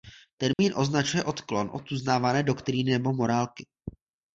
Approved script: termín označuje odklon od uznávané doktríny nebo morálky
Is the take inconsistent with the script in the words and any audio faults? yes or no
yes